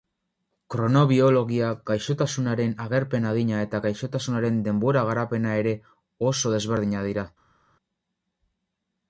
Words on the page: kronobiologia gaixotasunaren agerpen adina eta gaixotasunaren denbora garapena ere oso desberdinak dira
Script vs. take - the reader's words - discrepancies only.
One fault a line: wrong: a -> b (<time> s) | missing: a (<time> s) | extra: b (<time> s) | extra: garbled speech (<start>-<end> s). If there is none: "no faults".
no faults